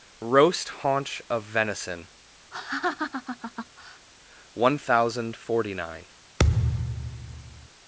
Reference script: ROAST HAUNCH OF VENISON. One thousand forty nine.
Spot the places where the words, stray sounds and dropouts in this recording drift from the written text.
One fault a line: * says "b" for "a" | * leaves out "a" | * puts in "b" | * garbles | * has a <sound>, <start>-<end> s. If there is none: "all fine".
* has a laugh, 2.5-4.1 s
* has a thud, 6.4-7.7 s